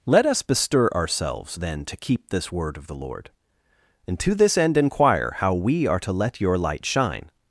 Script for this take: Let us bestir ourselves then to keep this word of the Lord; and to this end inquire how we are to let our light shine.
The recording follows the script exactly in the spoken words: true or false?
false